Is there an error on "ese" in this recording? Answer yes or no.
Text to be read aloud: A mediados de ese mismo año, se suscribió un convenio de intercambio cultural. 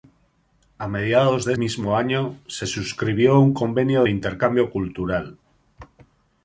yes